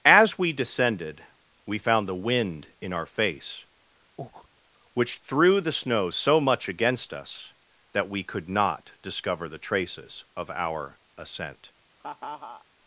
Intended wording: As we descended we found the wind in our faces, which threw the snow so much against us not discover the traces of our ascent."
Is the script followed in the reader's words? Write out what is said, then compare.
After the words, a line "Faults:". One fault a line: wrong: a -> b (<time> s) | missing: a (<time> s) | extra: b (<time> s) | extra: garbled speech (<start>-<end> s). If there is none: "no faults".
As we descended we found the wind in our face, which threw the snow so much against us that we could not discover the traces of our ascent."
Faults:
wrong: faces -> face (3.0 s)
extra: that we could (7.9 s)